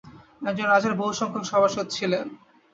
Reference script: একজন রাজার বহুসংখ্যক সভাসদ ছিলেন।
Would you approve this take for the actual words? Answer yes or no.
yes